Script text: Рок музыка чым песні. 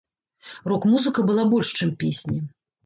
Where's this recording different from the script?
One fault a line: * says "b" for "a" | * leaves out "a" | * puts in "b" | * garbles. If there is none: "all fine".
* puts in "была больш"